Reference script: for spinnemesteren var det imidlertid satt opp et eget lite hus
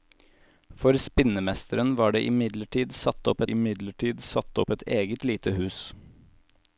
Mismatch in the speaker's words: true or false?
true